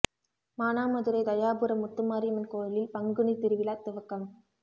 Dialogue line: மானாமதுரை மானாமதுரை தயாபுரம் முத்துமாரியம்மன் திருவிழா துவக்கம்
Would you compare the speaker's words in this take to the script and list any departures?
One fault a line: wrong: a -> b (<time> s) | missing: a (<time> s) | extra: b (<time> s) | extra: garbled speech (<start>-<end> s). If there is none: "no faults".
missing: மானாமதுரை (1.2 s)
extra: கோயிலில் பங்குனி (2.5 s)